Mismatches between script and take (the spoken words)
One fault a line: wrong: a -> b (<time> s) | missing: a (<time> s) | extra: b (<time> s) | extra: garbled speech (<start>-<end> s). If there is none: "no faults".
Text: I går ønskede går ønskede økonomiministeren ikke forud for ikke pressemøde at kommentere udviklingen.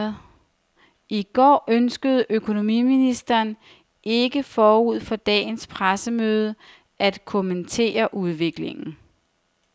missing: går ønskede (2.2 s)
wrong: ikke -> dagens (5.1 s)